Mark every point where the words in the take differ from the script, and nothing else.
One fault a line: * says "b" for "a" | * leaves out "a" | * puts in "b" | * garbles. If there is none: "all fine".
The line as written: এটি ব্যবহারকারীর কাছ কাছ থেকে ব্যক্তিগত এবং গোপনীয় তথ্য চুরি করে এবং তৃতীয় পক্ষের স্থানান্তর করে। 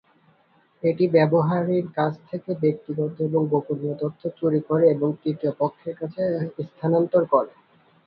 * leaves out "কাছ"
* puts in "কাছে"